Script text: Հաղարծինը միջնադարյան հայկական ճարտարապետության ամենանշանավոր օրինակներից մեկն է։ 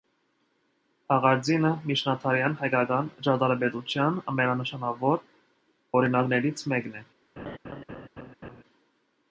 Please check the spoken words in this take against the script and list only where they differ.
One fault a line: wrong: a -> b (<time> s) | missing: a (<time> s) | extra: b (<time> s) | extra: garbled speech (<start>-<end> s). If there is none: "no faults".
no faults